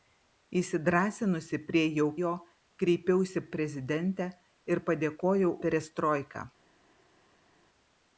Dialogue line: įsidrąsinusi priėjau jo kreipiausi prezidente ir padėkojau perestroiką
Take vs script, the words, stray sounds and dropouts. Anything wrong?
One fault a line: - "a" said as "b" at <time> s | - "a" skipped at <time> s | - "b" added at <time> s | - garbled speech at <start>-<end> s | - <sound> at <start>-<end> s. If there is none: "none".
none